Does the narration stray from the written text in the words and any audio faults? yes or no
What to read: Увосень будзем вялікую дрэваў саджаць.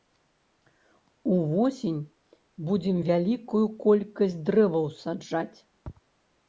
yes